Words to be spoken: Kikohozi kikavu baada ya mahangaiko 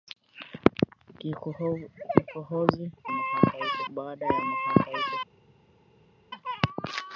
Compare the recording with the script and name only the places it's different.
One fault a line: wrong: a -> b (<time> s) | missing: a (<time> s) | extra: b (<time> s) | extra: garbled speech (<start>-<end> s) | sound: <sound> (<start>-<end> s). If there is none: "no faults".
wrong: kikavu -> mahangaiko (3.1 s)